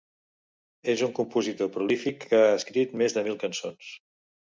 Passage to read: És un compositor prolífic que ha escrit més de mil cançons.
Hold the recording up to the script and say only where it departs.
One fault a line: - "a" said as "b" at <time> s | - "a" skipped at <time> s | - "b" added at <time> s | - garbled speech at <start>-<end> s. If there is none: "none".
none